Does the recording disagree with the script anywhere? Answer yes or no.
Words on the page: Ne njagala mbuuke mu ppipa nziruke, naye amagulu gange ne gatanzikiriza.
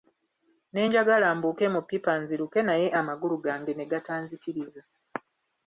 no